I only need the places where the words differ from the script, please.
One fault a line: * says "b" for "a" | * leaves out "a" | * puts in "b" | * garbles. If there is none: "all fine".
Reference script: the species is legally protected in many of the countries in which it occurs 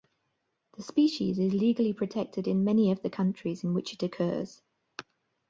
all fine